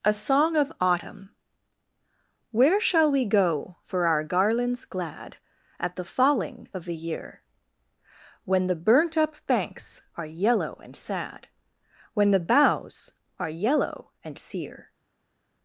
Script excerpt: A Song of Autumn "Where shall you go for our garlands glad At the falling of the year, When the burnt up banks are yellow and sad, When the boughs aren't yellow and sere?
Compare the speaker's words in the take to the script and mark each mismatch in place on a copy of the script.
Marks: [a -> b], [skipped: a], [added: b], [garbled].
A Song of Autumn "Where shall [you -> we] go for our garlands glad At the falling of the year, When the burnt up banks are yellow and sad, When the boughs [aren't -> are] yellow and sere?